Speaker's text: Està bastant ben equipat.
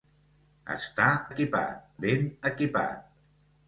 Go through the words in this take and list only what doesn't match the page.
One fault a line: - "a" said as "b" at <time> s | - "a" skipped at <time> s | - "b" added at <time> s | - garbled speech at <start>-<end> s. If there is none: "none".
- "bastant" said as "equipat" at 1.3 s